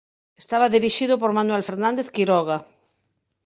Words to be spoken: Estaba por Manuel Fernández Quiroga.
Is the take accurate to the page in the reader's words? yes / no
no